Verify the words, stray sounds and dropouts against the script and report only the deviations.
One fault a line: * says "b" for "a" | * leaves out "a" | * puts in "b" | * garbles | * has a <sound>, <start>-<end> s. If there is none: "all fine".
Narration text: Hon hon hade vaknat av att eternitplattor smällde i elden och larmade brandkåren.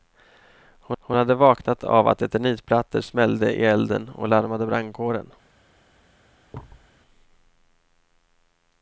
* has a thud, 6.5-6.9 s